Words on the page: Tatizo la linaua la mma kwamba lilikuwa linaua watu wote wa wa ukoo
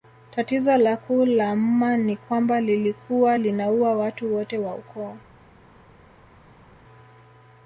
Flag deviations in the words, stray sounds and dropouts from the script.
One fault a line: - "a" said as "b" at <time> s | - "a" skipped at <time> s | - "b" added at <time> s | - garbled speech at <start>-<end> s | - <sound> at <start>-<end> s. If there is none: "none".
- "linaua" said as "kuu" at 1.0 s
- "ni" added at 2.0 s
- "wa" skipped at 4.8 s